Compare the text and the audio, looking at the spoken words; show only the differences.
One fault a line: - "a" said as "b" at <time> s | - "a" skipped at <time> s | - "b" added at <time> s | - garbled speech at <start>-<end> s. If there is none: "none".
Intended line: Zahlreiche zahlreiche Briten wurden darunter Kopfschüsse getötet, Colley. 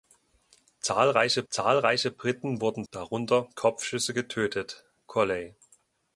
none